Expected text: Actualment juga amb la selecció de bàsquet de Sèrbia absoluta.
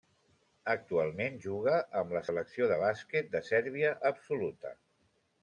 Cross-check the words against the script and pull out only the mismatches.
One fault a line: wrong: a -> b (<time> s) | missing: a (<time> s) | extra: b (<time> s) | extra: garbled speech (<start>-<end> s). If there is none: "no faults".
no faults